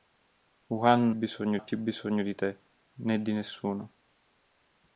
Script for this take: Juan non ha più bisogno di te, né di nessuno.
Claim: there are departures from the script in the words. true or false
true